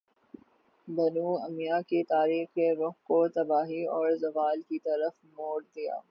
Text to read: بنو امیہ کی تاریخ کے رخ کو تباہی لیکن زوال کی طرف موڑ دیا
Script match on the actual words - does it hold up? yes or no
no